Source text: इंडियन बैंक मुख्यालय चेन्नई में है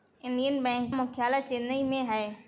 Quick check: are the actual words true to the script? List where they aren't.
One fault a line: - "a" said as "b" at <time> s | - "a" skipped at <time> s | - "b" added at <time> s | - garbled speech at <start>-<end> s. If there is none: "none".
none